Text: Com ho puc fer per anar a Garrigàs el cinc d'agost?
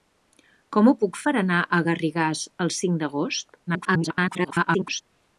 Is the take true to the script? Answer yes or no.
no